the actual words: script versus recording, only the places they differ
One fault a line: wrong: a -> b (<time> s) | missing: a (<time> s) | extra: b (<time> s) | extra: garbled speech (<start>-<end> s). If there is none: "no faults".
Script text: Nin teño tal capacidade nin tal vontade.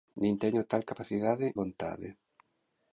missing: nin tal (1.5 s)